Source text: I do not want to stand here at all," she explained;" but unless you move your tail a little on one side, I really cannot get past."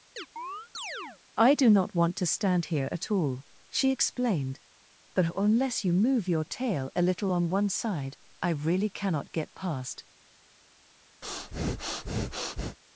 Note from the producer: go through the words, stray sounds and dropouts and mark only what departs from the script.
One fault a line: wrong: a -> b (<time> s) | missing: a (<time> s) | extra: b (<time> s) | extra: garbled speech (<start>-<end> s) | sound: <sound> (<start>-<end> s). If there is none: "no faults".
sound: chirp (0.2-1.2 s)
sound: breath (11.2-12.8 s)